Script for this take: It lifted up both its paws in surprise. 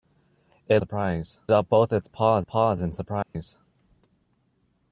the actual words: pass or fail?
fail